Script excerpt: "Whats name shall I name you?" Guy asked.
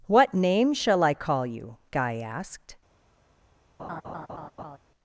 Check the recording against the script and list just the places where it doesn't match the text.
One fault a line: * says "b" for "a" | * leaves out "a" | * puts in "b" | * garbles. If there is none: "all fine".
* says "What" for "Whats"
* says "call" for "name"